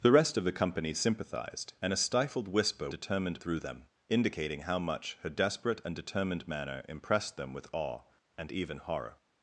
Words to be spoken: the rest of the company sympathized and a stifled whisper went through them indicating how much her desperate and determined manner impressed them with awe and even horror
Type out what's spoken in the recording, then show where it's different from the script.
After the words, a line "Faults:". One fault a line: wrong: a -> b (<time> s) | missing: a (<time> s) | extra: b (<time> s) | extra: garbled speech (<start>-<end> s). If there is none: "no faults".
the rest of the company sympathized and a stifled whisper determined through them indicating how much her desperate and determined manner impressed them with awe and even horror
Faults:
wrong: went -> determined (2.9 s)